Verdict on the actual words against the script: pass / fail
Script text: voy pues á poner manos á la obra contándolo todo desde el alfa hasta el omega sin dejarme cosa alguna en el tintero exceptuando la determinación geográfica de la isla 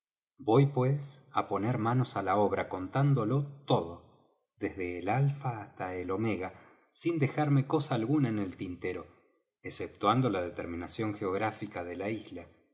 pass